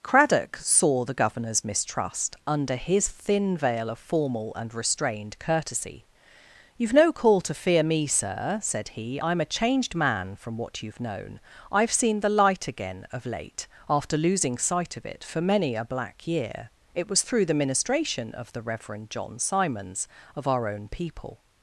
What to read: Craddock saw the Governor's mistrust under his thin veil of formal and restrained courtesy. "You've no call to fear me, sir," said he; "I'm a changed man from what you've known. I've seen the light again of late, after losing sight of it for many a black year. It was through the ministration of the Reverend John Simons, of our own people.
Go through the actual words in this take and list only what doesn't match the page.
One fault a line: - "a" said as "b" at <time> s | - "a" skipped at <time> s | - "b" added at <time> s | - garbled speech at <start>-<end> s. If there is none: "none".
none